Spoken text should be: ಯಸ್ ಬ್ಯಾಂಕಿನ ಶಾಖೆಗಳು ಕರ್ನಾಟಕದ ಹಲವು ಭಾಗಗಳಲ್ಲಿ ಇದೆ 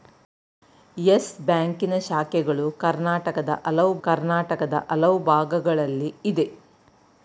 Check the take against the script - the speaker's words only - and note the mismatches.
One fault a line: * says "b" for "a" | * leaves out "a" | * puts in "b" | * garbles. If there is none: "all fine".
* puts in "ಕರ್ನಾಟಕದ ಹಲವು"